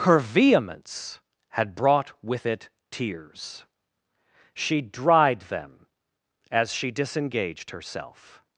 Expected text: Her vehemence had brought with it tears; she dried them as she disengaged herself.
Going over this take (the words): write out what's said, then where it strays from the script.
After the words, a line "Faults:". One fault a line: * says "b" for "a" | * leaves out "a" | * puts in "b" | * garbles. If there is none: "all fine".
Her vehemence had brought with it tears; she dried them as she disengaged herself.
Faults:
all fine